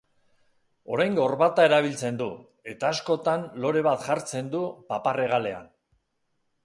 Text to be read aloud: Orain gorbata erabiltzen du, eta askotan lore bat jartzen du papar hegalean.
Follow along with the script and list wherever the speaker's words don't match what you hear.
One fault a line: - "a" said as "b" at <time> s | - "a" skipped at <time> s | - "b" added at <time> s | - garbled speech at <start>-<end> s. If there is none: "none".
none